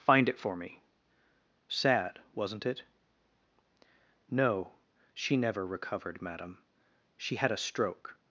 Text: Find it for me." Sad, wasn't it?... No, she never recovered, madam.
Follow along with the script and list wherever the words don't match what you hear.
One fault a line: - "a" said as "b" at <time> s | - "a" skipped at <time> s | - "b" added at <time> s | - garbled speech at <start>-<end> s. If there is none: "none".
- "She had a stroke" added at 7.2 s